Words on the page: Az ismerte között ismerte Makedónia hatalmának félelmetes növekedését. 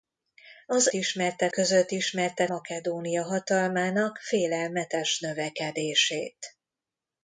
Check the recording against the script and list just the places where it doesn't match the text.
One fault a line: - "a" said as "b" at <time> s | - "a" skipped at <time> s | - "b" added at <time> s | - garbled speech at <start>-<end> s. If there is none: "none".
none